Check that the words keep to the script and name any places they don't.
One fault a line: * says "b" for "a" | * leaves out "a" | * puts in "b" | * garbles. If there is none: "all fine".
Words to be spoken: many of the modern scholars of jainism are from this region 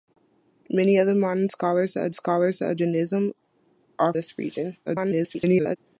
* puts in "scholars of"
* leaves out "from"
* garbles